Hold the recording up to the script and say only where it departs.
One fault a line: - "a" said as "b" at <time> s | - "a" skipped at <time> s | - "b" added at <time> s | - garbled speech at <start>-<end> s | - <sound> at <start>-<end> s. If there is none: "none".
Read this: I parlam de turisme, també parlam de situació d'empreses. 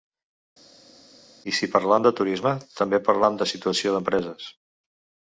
- "si" added at 1.6 s